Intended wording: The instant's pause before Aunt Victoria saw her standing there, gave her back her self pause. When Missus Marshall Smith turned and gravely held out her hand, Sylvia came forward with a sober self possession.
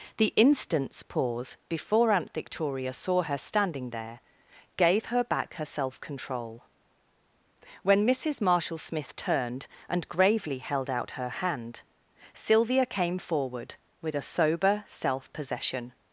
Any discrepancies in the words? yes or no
yes